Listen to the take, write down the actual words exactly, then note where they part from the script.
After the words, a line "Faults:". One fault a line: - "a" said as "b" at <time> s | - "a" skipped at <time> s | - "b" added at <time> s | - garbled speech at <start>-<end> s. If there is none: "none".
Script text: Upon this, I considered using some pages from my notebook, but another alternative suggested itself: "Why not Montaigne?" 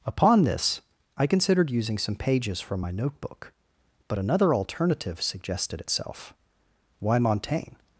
Upon this, I considered using some pages from my notebook, but another alternative suggested itself: "Why Montaigne?"
Faults:
- "not" skipped at 7.2 s